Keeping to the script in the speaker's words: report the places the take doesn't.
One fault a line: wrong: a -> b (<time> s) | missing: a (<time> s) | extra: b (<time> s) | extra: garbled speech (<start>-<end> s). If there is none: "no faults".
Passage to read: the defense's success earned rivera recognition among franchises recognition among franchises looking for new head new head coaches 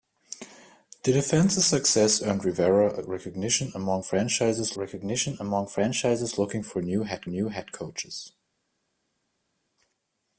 no faults